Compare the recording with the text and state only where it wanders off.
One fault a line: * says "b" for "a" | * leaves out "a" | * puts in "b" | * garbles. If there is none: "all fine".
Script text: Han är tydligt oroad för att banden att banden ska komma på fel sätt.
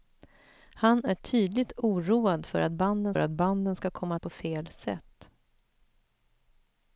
all fine